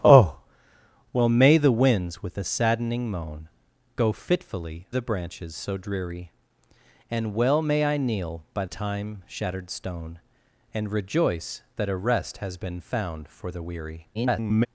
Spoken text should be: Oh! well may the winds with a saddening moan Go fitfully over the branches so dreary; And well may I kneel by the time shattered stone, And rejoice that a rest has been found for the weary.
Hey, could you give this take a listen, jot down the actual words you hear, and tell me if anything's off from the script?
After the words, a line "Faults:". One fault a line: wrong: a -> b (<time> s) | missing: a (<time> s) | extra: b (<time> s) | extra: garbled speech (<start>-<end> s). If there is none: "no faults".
Oh! well may the winds with a saddening moan Go fitfully the branches so dreary; And well may I kneel by time shattered stone, And rejoice that a rest has been found for the weary. [garbled]
Faults:
missing: over (4.9 s)
missing: the (8.6 s)
extra: garbled speech (14.1-14.7 s)